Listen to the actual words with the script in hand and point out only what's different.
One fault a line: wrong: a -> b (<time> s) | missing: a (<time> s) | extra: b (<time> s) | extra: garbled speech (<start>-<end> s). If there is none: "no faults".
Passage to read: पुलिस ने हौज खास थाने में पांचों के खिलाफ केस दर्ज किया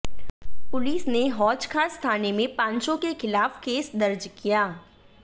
no faults